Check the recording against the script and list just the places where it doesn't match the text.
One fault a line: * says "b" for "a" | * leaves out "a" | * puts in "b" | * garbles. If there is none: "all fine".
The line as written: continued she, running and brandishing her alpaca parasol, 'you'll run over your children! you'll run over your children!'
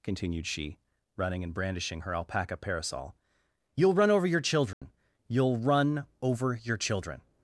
all fine